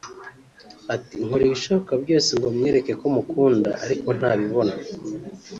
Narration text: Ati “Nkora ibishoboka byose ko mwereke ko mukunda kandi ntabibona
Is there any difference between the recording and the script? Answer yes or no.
yes